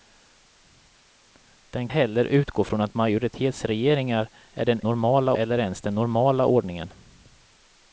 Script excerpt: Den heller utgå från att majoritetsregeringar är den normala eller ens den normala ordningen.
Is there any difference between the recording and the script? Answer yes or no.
no